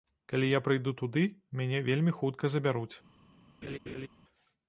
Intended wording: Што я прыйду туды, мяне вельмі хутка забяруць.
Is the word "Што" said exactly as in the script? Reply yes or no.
no